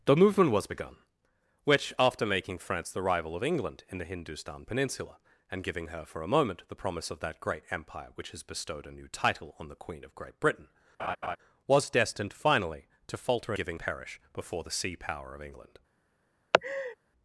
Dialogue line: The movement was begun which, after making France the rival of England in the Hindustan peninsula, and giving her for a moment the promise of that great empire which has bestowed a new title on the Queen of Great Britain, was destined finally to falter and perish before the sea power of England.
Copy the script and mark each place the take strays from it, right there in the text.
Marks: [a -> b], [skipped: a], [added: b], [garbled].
The movement was begun which, after making France the rival of England in the Hindustan peninsula, and giving her for a moment the promise of that great empire which has bestowed a new title on the Queen of Great Britain, was destined finally to falter [and -> giving] perish before the sea power of England.